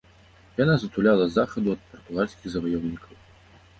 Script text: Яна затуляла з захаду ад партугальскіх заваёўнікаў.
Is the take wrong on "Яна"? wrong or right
right